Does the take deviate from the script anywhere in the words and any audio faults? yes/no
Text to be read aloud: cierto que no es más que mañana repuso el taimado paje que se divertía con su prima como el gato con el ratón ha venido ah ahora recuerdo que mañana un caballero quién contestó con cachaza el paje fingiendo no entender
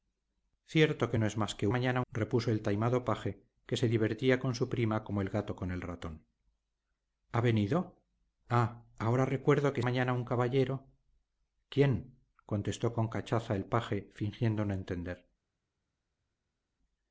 no